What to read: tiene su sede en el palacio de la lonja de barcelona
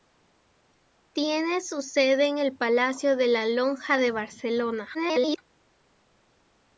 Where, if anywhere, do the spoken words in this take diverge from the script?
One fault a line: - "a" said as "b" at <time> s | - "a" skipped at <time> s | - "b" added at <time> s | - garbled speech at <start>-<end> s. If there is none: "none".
- garbled speech at 4.9-5.4 s